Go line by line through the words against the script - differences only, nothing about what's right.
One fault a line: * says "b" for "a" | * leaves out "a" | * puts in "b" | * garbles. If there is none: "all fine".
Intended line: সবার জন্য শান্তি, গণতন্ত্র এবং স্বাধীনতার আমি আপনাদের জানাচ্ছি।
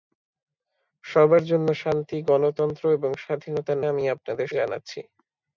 all fine